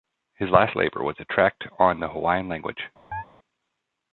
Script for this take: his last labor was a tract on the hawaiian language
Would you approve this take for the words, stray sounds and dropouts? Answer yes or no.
no